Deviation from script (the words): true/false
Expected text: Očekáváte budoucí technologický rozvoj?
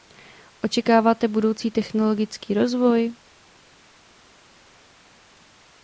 false